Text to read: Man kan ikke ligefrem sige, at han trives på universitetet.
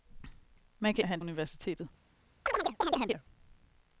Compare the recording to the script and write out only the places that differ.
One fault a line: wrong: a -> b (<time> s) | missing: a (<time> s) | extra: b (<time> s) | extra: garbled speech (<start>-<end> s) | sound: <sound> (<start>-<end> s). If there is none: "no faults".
missing: ikke ligefrem sige (1.1 s)
missing: trives på (1.2 s)
sound: chirp (2.5-3.2 s)